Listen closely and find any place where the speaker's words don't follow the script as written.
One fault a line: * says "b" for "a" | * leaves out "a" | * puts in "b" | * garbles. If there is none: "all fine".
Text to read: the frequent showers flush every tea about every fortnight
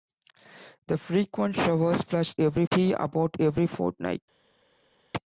all fine